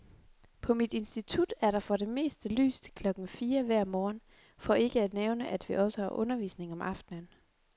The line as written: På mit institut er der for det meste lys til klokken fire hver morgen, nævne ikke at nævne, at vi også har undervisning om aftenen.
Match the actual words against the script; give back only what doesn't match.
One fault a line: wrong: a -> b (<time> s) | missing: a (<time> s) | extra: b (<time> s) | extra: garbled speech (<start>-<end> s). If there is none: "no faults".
wrong: nævne -> for (4.6 s)